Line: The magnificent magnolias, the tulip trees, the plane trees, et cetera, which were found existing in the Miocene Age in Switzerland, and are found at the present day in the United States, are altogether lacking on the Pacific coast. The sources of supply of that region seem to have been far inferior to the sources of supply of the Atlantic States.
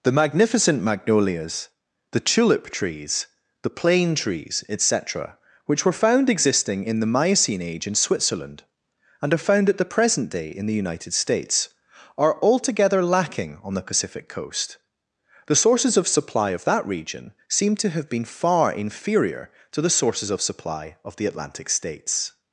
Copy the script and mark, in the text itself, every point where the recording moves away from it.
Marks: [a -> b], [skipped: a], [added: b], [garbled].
The magnificent magnolias, the tulip trees, the plane trees, et cetera, which were found existing in the Miocene Age in Switzerland, and are found at the present day in the United States, are altogether lacking on the Pacific coast. The sources of supply of that region seem to have been far inferior to the sources of supply of the Atlantic States.